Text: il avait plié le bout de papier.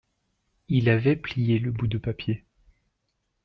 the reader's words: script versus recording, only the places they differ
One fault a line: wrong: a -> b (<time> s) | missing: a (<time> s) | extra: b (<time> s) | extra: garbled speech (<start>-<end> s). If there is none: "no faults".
no faults